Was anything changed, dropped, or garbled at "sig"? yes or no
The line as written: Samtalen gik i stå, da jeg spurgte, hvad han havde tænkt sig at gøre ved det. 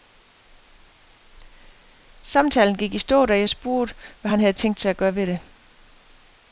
no